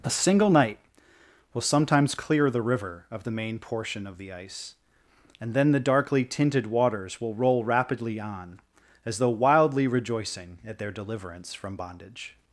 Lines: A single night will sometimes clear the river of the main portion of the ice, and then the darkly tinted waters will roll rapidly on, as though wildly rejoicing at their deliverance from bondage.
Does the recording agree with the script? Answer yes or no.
yes